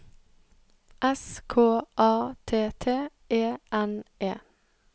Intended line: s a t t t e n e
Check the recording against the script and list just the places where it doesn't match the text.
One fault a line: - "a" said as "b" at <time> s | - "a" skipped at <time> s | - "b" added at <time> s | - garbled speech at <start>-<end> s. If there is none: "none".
- "k" added at 1.5 s
- "t" skipped at 3.1 s